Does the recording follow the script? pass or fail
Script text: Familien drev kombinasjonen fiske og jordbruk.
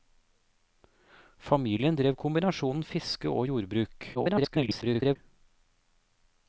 fail